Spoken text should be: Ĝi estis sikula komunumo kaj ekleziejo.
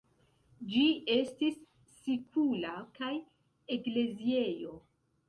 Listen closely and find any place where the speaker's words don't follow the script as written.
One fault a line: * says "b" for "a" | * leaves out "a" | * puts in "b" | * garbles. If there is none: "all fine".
* leaves out "komunumo"